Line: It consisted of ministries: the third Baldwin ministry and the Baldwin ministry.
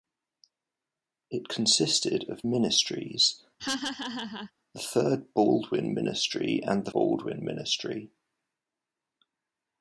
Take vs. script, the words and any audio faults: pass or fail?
fail